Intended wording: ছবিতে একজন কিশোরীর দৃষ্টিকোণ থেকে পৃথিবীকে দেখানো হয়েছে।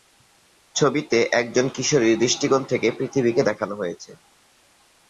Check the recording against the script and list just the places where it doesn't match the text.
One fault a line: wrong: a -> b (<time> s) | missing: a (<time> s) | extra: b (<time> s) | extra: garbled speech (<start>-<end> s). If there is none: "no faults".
no faults